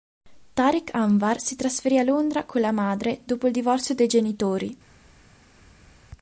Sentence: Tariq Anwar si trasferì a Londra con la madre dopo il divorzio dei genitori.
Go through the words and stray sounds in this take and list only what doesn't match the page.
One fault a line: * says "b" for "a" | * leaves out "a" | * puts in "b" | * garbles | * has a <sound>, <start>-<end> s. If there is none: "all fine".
all fine